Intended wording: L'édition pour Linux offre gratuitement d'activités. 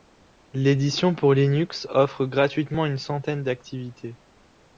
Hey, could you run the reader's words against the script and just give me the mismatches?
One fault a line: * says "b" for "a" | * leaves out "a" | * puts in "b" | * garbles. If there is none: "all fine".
* puts in "une centaine"